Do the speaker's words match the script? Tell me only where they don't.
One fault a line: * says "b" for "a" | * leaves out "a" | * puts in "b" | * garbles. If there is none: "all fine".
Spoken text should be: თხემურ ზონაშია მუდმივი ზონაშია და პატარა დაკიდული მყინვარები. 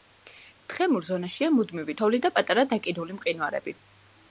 * says "თოვლი" for "ზონაშია"